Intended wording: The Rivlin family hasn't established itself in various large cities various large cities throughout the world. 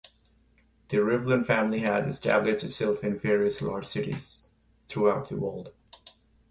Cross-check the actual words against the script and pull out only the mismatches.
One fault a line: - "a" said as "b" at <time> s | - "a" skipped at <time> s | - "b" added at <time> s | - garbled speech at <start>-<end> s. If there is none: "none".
- "hasn't" said as "has" at 1.8 s
- "various large cities" skipped at 4.5 s